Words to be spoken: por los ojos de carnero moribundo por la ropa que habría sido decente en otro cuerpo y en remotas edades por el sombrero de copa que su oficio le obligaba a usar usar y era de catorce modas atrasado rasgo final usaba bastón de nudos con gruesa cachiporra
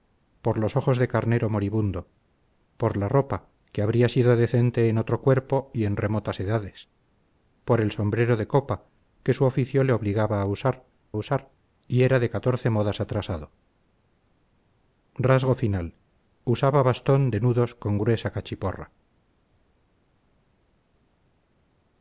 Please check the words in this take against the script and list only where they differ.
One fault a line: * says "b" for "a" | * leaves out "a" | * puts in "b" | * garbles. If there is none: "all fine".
all fine